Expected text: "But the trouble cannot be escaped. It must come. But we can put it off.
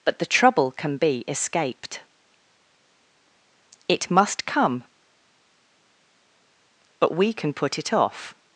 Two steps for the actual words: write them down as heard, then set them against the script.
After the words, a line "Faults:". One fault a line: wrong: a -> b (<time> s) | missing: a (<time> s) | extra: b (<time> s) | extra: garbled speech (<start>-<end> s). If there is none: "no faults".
"But the trouble can be escaped. It must come. But we can put it off.
Faults:
wrong: cannot -> can (0.7 s)